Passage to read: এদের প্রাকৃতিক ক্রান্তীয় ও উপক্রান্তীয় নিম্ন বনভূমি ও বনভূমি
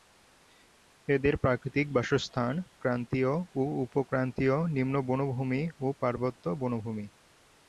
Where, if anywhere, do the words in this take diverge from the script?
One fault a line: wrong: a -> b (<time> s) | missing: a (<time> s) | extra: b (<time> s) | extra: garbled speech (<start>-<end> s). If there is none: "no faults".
extra: বাসস্থান (1.9 s)
extra: পার্বত্য (6.0 s)